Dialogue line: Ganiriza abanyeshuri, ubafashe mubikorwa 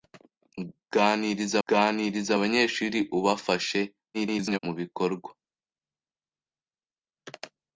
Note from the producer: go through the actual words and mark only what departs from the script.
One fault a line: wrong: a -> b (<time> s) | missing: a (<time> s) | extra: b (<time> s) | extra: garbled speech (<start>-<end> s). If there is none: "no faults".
extra: ganiriza (1.7 s)
extra: garbled speech (4.1-4.6 s)